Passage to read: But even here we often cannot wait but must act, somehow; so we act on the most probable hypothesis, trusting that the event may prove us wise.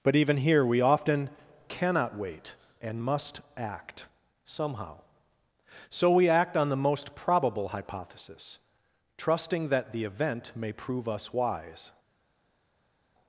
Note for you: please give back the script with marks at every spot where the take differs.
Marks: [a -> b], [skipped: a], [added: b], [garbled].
But even here we often cannot wait [but -> and] must act, somehow; so we act on the most probable hypothesis, trusting that the event may prove us wise.